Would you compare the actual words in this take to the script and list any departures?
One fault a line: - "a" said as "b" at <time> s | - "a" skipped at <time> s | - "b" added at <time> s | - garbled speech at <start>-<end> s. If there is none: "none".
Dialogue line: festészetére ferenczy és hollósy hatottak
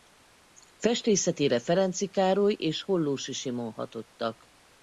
- "károly" added at 2.1 s
- "simon" added at 3.3 s